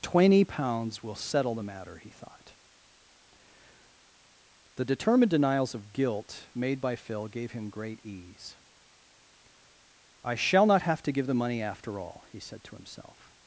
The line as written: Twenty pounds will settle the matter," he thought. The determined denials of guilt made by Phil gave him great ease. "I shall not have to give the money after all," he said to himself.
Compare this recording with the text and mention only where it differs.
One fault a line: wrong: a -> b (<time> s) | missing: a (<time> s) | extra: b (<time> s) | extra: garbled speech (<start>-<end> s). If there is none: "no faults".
no faults